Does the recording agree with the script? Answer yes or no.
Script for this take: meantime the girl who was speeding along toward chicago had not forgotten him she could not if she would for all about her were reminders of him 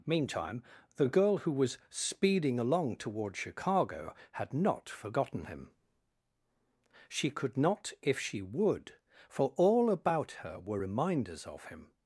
yes